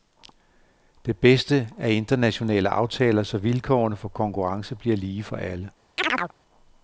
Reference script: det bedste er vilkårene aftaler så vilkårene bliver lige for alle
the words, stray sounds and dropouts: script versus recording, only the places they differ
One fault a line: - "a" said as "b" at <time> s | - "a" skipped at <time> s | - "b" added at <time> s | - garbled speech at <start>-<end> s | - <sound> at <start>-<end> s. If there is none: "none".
- "vilkårene" said as "internationale" at 1.9 s
- "for konkurrence" added at 4.0 s
- chirp at 6.0-6.3 s